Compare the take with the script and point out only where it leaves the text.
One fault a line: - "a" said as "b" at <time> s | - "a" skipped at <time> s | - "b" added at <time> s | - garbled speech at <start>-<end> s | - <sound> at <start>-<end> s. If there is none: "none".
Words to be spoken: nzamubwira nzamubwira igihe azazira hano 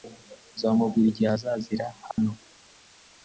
- "nzamubwira" skipped at 1.1 s
- dropout at 2.1-2.2 s